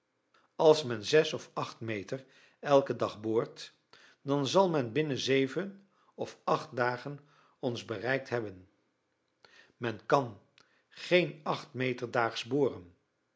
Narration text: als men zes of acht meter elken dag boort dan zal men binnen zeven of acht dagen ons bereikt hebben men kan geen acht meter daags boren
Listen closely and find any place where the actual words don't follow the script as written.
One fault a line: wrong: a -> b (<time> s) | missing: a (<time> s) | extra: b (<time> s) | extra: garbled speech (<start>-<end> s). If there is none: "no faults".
no faults